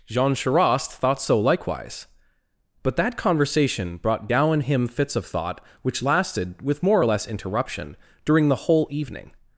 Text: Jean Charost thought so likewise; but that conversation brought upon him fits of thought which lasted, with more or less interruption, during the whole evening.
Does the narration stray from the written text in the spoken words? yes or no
yes